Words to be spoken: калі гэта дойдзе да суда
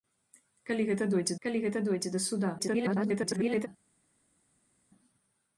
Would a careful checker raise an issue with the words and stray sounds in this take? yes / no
yes